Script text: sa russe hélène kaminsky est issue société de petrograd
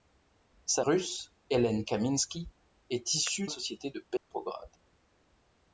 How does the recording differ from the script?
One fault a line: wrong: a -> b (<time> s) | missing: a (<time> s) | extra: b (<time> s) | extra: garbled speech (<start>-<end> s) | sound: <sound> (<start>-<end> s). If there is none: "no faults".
sound: dropout (4.2-4.3 s)